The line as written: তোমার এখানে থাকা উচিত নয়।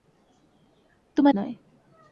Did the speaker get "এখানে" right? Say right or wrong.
wrong